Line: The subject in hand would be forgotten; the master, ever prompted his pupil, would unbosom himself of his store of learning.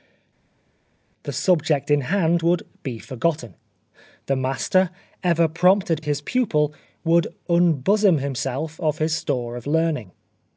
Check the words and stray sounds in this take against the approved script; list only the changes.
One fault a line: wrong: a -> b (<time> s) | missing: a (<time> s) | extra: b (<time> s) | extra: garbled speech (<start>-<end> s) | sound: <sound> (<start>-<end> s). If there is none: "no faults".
no faults